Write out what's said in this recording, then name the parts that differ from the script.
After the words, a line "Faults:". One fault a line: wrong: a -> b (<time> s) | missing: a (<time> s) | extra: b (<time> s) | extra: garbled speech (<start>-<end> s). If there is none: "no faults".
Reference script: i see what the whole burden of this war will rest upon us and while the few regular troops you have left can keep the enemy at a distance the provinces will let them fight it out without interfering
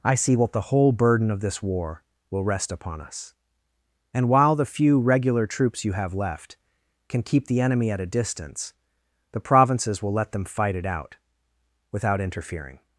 i see what the whole burden of this war will rest upon us and while the few regular troops you have left can keep the enemy at a distance the provinces will let them fight it out without interfering
Faults:
no faults